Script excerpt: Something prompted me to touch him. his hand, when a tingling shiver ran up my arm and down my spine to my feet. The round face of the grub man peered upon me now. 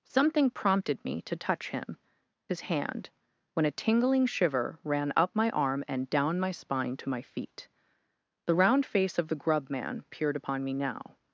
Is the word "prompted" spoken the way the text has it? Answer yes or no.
yes